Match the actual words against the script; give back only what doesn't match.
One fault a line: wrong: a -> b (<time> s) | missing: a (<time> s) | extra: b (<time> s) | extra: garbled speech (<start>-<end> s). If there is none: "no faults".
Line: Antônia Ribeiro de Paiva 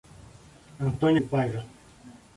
missing: Ribeiro (1.2 s)